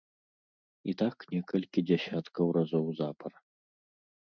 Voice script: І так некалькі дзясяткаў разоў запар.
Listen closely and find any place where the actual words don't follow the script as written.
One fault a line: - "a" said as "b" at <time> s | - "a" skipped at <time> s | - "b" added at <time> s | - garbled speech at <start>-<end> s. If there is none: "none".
none